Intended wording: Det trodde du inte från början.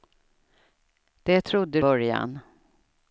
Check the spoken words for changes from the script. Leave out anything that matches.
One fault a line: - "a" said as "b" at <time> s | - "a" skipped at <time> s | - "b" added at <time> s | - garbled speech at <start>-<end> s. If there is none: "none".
- "du inte från" skipped at 1.8 s